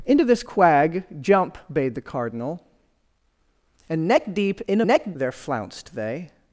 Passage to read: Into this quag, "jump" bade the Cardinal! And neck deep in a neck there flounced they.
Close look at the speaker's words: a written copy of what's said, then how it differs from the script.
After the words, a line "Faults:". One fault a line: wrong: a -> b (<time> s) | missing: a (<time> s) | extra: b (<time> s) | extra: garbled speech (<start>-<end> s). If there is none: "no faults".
Into this quag, "jump" bade the Cardinal! And neck deep in a neck there flounced they.
Faults:
no faults